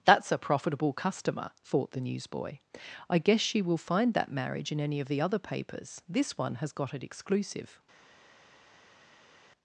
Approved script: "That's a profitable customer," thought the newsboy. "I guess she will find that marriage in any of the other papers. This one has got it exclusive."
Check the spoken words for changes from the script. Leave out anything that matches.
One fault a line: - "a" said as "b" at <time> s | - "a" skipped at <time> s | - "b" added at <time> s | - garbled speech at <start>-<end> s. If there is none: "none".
none